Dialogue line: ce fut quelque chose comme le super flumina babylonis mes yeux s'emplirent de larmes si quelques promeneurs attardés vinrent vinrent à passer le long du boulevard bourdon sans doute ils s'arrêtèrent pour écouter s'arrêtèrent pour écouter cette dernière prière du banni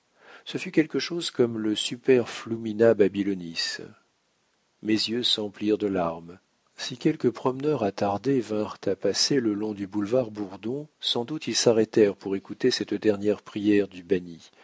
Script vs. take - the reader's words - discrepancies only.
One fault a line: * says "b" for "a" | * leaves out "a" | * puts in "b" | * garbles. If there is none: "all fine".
* leaves out "vinrent"
* leaves out "s'arrêtèrent pour écouter"